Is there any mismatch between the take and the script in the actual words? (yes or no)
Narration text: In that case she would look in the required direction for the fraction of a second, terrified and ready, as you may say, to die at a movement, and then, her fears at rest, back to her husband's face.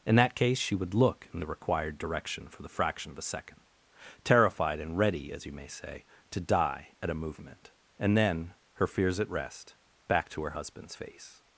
no